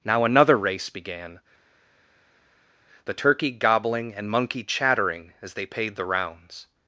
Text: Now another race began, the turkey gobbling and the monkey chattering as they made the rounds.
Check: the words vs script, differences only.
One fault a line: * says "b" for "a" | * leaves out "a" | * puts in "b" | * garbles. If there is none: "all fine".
* leaves out "the"
* says "paid" for "made"